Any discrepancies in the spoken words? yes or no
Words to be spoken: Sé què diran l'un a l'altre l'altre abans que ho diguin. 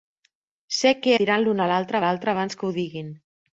no